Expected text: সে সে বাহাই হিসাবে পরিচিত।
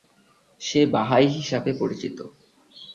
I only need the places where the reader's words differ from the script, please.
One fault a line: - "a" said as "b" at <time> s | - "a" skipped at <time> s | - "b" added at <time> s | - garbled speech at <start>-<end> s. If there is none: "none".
- "সে" skipped at 0.8 s